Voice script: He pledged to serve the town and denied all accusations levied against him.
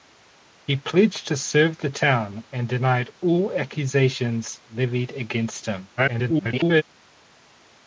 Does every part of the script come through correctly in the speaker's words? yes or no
no